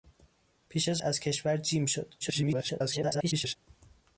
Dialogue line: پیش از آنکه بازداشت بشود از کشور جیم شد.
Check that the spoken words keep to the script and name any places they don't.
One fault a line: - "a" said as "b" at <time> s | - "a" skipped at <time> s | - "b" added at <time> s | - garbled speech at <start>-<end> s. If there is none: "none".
- "آنکه بازداشت بشود" skipped at 1.0 s
- garbled speech at 2.2-3.6 s